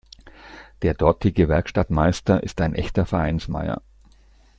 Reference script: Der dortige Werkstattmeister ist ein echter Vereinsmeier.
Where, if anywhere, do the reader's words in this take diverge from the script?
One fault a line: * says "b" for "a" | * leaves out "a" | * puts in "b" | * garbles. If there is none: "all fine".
all fine